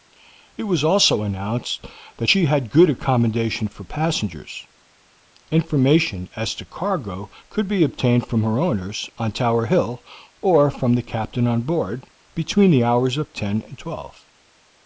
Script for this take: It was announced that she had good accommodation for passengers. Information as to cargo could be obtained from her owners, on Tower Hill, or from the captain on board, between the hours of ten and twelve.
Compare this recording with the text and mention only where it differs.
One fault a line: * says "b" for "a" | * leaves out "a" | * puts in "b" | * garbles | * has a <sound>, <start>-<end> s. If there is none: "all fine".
* puts in "also"